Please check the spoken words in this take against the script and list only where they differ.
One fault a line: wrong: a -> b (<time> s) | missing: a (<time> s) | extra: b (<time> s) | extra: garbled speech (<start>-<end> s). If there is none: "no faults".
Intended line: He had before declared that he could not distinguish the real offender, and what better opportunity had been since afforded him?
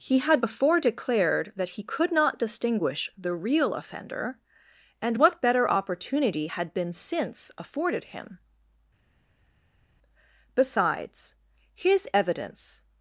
extra: Besides his evidence (10.5 s)